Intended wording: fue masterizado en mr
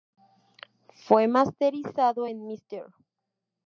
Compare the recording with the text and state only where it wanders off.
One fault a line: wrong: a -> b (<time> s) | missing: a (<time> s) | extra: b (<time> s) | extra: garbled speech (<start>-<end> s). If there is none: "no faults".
no faults